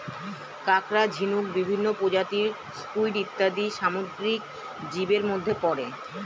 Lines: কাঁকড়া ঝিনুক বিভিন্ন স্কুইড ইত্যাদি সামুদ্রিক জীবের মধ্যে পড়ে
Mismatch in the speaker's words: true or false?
true